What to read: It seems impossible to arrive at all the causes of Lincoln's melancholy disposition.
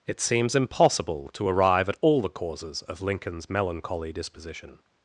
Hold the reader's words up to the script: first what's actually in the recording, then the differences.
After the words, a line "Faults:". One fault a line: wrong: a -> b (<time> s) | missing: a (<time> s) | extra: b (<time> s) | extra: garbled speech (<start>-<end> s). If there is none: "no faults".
It seems impossible to arrive at all the causes of Lincoln's melancholy disposition.
Faults:
no faults